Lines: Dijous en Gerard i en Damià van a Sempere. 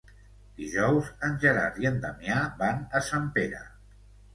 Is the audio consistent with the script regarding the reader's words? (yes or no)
yes